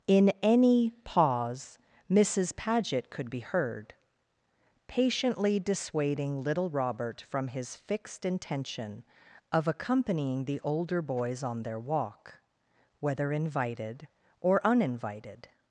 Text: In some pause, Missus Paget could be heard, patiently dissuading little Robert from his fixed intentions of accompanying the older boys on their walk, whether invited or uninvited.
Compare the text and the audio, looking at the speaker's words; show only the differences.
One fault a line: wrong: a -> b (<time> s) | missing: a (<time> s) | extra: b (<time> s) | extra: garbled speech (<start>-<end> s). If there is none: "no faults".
wrong: some -> any (0.4 s)
wrong: intentions -> intention (8.2 s)